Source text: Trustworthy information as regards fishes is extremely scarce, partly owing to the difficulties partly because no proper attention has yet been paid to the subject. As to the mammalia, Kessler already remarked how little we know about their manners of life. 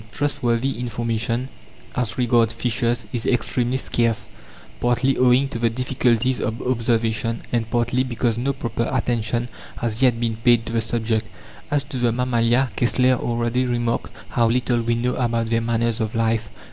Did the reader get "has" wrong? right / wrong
right